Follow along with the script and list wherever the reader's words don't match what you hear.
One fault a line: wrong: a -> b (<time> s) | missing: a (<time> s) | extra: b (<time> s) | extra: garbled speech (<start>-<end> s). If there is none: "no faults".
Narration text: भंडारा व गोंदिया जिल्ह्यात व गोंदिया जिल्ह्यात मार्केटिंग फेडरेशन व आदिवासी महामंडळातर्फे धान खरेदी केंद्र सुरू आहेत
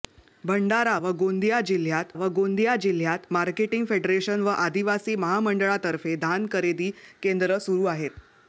no faults